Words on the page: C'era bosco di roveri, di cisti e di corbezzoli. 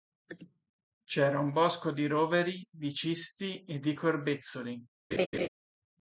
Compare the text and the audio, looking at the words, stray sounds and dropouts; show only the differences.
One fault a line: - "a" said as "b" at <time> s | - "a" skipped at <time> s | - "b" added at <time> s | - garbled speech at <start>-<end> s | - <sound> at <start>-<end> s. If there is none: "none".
- "un" added at 1.4 s
- laugh at 5.1-5.5 s